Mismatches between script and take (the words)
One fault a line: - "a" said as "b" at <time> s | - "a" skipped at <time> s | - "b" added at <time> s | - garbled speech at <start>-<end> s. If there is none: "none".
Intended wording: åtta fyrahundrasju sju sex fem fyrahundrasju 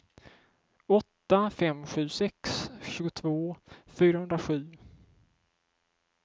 - "fyrahundrasju" said as "fem" at 1.5 s
- "fem" said as "tjugotvå" at 2.8 s